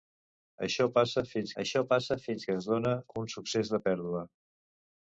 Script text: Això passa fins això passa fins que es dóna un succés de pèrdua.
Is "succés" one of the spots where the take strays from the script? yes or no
no